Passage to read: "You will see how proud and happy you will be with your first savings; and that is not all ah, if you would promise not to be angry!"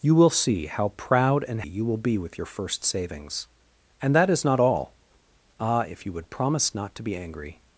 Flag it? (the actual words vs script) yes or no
yes